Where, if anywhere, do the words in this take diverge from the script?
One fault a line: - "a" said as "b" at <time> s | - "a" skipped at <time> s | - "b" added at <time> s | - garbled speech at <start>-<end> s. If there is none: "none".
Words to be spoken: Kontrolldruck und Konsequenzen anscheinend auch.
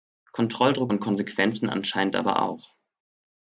- "aber" added at 2.1 s